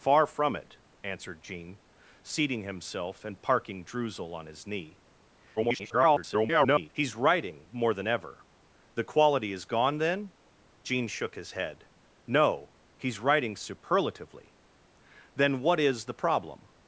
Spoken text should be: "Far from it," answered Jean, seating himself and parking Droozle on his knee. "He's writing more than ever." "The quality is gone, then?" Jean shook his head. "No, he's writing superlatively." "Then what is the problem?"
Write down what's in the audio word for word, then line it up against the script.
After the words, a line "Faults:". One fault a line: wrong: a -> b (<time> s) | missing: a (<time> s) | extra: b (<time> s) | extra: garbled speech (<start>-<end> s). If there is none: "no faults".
"Far from it," answered Jean, seating himself and parking Droozle on his knee. [garbled] "He's writing more than ever." "The quality is gone, then?" Jean shook his head. "No, he's writing superlatively." "Then what is the problem?"
Faults:
extra: garbled speech (5.6-6.9 s)